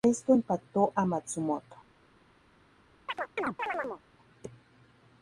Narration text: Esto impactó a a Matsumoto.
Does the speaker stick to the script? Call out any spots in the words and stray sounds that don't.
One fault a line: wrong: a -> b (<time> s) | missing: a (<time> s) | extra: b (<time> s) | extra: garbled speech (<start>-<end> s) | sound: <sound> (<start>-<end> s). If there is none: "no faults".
missing: a (1.1 s)
sound: chirp (3.1-4.0 s)